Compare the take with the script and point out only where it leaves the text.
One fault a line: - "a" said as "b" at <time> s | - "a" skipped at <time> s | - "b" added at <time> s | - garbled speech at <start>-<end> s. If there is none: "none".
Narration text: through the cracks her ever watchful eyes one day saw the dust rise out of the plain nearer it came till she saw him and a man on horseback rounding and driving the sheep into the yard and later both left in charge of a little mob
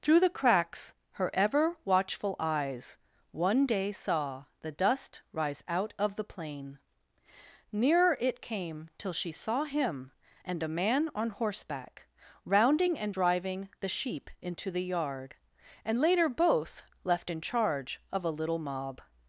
none